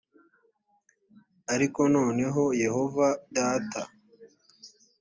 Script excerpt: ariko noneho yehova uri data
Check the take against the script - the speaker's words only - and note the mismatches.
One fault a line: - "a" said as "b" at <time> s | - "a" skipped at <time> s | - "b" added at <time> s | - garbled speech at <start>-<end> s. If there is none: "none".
- "uri" skipped at 3.1 s